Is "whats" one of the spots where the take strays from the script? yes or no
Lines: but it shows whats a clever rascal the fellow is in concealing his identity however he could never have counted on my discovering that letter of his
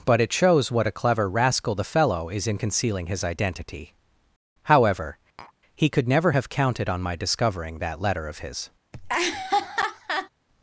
yes